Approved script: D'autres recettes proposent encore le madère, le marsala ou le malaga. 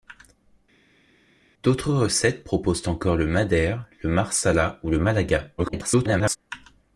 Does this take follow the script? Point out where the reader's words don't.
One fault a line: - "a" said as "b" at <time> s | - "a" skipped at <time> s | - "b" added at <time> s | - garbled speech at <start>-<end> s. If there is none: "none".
- garbled speech at 5.6-6.4 s